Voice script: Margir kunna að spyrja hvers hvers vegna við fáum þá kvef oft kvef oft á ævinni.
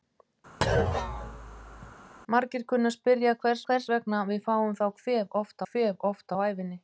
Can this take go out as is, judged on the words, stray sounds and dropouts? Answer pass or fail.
fail